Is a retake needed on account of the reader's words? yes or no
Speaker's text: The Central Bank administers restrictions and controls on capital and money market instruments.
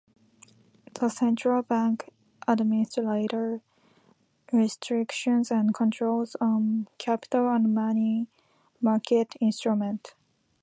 no